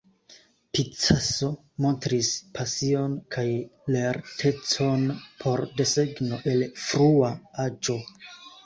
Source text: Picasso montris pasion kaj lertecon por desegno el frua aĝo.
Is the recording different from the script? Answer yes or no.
no